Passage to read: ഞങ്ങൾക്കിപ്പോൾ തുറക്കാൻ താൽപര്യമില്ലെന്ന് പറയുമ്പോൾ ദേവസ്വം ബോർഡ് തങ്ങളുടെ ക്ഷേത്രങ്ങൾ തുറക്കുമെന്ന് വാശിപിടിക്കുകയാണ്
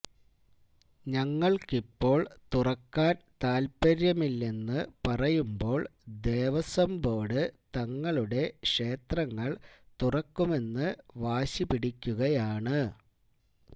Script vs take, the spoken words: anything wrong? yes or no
no